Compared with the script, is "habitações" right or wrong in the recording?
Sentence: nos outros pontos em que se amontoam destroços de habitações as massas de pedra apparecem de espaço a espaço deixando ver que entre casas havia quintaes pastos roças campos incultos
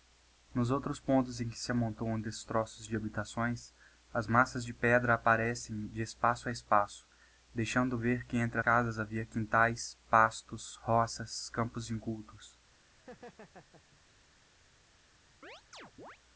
right